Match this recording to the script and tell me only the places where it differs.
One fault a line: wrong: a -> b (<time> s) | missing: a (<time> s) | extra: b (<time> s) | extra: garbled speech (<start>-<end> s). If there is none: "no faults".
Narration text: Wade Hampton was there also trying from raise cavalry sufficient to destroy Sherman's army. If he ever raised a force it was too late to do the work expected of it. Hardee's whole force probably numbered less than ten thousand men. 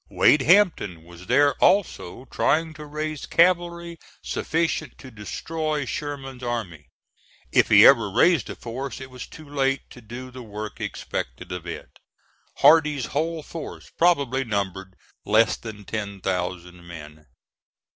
wrong: from -> to (2.7 s)